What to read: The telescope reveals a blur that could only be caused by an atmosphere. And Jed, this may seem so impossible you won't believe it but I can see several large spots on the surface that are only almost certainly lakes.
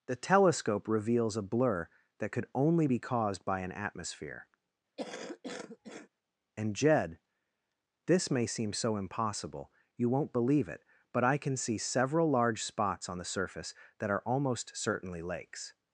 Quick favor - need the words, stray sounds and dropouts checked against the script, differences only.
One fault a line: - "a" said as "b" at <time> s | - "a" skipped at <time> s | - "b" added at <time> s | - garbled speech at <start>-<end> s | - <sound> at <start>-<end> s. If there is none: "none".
- cough at 5.0-6.1 s
- "only" skipped at 14.2 s